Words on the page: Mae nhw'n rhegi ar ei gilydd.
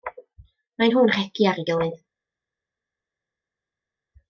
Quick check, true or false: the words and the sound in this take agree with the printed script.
true